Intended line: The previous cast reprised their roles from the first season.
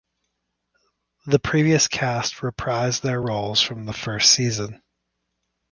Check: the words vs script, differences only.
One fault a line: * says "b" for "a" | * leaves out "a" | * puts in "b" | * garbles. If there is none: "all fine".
all fine